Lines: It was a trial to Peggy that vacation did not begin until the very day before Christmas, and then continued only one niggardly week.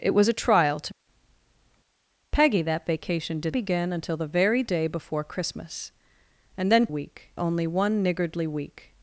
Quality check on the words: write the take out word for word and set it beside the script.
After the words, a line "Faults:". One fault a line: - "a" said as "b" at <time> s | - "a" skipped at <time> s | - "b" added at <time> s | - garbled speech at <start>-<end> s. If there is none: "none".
It was a trial to Peggy that vacation did begin until the very day before Christmas, and then week only one niggardly week.
Faults:
- "not" skipped at 3.5 s
- "continued" said as "week" at 6.9 s